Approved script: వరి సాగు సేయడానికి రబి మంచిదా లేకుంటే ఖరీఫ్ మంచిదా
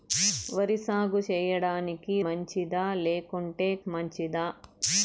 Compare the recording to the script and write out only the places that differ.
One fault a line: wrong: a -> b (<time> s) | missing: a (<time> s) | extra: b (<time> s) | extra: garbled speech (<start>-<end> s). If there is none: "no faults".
missing: రబి (2.1 s)
missing: ఖరీఫ్ (3.7 s)